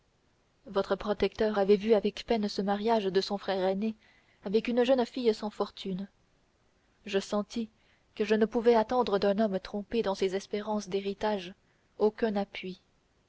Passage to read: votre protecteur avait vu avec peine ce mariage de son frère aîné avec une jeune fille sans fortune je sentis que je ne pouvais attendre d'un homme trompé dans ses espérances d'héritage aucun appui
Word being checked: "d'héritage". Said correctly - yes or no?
yes